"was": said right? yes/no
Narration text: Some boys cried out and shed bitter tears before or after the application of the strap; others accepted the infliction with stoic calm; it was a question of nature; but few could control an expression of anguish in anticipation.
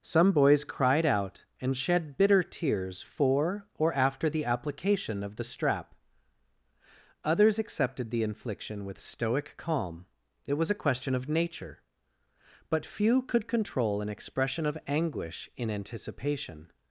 yes